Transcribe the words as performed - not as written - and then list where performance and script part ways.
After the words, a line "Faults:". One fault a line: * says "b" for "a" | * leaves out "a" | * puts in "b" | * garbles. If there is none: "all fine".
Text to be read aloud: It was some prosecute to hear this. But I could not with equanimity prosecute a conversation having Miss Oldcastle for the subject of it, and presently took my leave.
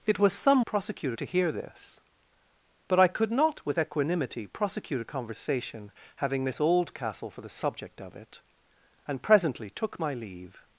It was some prosecute to hear this. But I could not with equanimity prosecute a conversation having Miss Oldcastle for the subject of it, and presently took my leave.
Faults:
all fine